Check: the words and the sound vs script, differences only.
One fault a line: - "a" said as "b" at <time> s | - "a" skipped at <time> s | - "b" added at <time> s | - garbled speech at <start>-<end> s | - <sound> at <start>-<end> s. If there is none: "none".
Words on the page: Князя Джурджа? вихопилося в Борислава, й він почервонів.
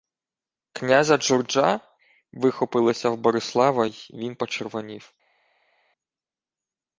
none